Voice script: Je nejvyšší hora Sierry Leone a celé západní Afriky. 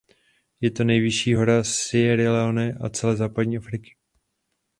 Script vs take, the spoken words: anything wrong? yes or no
yes